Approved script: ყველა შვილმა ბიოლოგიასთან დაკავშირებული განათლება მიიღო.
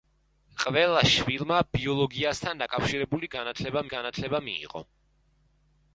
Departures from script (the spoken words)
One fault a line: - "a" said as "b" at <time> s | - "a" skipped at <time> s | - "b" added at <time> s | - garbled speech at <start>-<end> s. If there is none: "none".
- "განათლება" added at 3.9 s